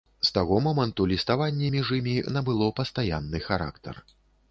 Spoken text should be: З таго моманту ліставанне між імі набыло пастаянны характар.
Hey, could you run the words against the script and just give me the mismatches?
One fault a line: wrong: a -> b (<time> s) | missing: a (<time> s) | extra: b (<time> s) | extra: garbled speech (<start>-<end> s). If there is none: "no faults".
no faults